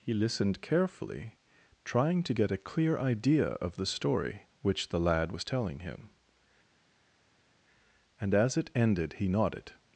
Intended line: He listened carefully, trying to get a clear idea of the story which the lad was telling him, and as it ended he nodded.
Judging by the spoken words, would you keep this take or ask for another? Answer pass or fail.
pass